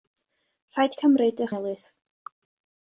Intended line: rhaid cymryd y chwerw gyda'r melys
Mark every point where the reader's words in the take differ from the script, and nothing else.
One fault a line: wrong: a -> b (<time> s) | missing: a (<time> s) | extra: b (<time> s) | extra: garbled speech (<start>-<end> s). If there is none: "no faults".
missing: chwerw gyda'r (1.5 s)